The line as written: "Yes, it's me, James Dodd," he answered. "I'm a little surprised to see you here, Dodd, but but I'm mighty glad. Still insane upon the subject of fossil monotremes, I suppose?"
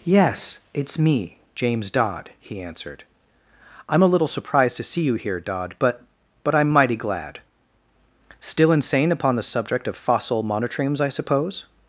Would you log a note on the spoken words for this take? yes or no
no